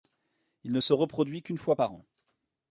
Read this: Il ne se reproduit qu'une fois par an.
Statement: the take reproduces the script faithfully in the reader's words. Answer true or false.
true